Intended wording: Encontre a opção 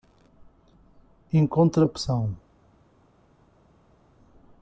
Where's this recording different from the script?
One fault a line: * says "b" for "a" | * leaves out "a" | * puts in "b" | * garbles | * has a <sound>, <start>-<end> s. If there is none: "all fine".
all fine